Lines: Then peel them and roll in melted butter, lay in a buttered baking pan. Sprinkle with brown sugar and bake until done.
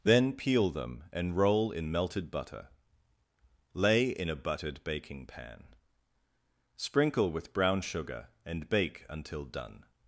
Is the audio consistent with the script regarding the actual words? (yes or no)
yes